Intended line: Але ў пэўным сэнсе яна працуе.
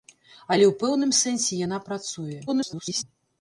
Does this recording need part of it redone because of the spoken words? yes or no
yes